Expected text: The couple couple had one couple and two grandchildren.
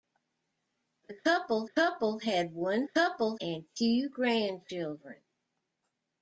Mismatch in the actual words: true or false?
false